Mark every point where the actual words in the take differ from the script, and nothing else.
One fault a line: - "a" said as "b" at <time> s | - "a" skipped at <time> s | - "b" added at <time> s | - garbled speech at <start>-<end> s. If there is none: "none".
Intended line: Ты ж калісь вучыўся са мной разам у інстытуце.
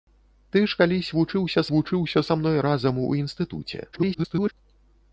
- "вучыўся" added at 1.7 s
- garbled speech at 3.9-4.5 s